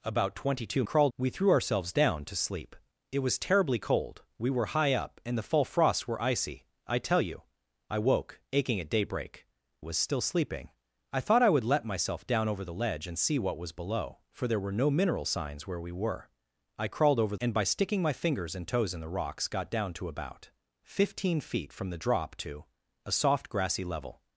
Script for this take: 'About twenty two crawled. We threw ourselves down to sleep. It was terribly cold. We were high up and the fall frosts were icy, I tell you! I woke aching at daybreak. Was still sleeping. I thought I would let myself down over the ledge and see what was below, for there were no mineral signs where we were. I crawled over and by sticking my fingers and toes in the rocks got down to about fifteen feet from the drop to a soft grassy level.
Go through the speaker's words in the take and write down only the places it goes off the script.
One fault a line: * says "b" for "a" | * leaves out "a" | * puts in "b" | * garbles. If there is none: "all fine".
all fine